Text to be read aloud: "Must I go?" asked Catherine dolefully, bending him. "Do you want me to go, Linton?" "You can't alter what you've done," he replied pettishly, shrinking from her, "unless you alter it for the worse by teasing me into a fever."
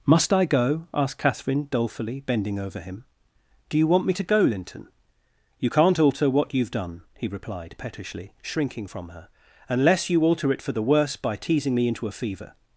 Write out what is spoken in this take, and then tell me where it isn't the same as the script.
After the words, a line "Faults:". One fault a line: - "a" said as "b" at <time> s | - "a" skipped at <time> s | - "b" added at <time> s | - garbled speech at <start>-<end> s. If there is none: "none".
"Must I go?" asked Catherine dolefully, bending over him. "Do you want me to go, Linton?" "You can't alter what you've done," he replied pettishly, shrinking from her, "unless you alter it for the worse by teasing me into a fever."
Faults:
- "over" added at 2.6 s